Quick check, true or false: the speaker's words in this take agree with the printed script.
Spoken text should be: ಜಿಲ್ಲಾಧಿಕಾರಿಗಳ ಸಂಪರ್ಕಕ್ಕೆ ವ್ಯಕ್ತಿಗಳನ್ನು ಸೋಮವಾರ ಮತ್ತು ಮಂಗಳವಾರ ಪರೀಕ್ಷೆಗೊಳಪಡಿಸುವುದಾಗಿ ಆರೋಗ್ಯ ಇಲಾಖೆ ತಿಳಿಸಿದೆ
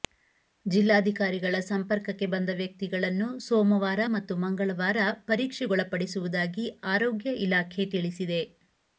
false